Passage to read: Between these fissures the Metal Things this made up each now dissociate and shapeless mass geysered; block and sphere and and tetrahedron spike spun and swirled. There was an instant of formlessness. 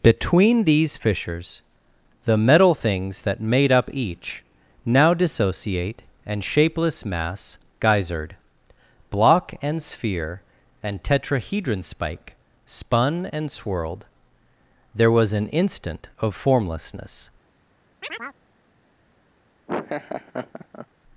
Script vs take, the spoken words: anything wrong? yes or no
yes